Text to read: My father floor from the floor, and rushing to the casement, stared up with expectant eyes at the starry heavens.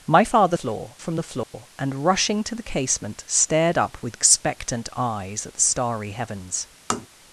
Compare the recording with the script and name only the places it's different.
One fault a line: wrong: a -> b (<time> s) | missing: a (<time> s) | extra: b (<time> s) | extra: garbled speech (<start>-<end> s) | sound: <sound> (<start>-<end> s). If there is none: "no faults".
sound: dropout (1.4-1.5 s)
sound: tap (6.9-7.1 s)